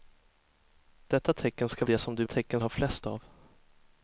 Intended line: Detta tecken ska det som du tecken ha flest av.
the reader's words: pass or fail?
pass